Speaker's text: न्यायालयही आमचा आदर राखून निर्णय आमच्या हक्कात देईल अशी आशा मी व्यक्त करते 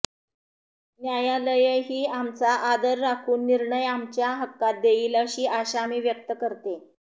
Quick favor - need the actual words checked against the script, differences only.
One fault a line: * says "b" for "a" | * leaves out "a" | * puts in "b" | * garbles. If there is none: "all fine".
all fine